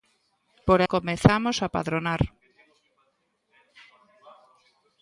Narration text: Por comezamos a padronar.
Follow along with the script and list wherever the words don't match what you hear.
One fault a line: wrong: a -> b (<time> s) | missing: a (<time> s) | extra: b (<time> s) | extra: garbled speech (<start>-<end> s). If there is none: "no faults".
no faults